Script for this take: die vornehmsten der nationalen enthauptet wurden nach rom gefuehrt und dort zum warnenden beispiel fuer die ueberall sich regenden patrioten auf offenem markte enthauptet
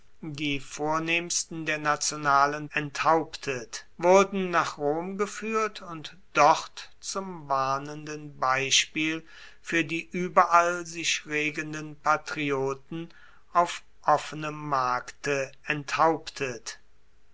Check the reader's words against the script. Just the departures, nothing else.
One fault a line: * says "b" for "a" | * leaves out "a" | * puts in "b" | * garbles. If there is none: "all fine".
all fine